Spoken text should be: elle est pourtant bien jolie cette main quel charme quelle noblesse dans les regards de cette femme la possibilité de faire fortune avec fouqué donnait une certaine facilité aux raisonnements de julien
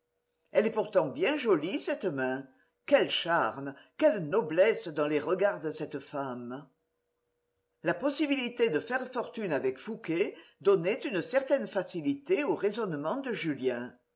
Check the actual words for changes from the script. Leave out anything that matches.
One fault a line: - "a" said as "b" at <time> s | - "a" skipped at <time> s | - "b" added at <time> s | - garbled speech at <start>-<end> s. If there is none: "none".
none